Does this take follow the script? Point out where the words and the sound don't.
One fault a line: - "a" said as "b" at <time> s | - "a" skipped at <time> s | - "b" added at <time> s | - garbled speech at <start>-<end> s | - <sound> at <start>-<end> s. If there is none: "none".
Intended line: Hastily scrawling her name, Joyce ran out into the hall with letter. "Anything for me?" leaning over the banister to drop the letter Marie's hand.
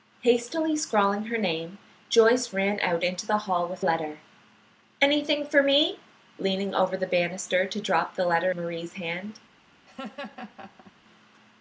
- laugh at 9.8-10.9 s